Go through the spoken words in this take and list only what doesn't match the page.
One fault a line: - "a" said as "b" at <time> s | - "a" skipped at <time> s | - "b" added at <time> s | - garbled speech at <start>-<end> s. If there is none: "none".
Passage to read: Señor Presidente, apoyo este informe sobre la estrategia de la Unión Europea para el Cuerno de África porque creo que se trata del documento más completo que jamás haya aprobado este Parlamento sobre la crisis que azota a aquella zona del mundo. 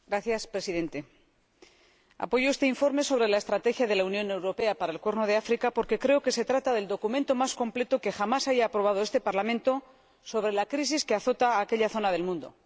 none